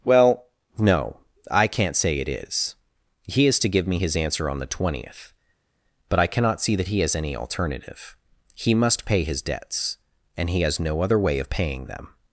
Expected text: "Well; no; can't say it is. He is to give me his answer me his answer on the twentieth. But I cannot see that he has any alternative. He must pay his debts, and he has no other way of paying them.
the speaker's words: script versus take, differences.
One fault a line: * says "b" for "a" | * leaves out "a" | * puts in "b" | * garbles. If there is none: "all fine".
* puts in "I"
* leaves out "me his answer"